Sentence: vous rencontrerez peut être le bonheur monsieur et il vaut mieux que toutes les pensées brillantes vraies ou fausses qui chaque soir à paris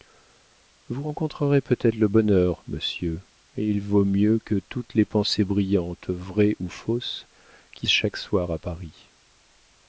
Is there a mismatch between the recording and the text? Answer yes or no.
no